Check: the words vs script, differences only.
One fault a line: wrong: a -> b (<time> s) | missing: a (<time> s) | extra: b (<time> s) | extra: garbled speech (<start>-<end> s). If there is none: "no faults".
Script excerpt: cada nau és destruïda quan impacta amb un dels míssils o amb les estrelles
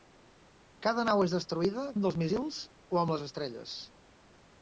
missing: quan impacta amb (1.8 s)